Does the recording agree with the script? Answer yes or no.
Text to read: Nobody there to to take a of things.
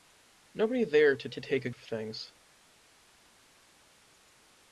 yes